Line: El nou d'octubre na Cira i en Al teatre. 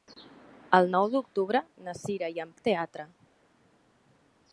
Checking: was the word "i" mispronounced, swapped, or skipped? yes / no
no